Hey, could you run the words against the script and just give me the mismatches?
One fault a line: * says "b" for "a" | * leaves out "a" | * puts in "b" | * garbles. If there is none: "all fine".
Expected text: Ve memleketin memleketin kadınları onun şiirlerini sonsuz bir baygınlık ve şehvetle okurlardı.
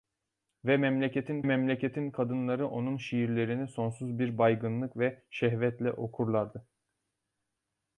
all fine